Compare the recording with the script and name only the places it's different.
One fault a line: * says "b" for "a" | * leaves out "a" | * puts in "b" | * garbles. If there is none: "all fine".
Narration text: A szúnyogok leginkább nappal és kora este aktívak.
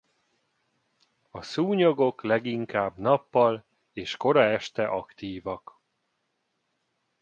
all fine